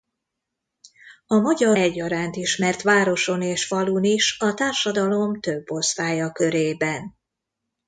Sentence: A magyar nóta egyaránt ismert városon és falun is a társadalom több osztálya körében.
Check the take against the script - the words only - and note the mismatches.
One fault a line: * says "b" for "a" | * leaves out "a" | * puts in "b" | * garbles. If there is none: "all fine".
* leaves out "nóta"